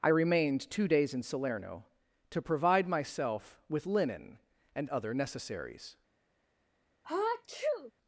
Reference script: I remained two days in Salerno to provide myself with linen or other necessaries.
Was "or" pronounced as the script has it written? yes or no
no